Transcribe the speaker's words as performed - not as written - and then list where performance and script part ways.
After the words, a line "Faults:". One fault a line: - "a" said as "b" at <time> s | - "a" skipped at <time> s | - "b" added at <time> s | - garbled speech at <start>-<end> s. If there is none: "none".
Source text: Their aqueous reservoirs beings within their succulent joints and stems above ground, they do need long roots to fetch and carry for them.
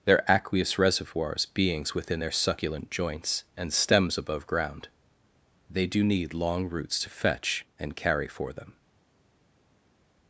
Their aqueous reservoirs beings within their succulent joints and stems above ground, they do need long roots to fetch and carry for them.
Faults:
none